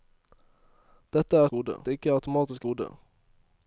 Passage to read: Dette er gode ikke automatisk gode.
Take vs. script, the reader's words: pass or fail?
pass